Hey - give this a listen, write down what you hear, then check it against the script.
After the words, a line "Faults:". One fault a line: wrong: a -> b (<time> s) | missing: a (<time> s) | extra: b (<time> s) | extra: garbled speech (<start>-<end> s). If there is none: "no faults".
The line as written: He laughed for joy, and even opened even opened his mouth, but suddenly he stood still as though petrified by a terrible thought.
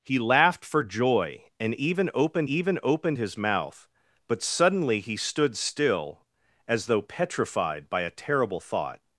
He laughed for joy, and even opened even opened his mouth, but suddenly he stood still as though petrified by a terrible thought.
Faults:
no faults